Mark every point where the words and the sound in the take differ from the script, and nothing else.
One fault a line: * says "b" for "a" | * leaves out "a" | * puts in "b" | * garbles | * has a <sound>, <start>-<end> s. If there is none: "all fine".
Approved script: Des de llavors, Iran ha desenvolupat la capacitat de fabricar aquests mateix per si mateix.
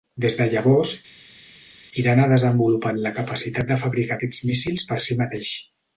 * says "míssils" for "mateix"